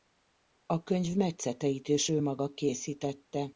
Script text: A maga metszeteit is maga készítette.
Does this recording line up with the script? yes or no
no